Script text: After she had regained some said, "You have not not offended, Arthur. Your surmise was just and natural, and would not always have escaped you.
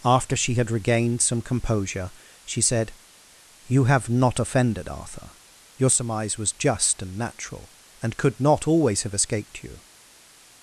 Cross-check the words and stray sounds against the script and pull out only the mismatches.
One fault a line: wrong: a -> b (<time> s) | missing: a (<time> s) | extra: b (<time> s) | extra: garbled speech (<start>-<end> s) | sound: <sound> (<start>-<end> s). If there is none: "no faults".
extra: composure she (1.4 s)
missing: not (4.4 s)
wrong: would -> could (8.2 s)